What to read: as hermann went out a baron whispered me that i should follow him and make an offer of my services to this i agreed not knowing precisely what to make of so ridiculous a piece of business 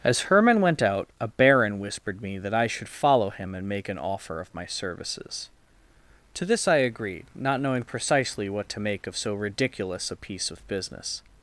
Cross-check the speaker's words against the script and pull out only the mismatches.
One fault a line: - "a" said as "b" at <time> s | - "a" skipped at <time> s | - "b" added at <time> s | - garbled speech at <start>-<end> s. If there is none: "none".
none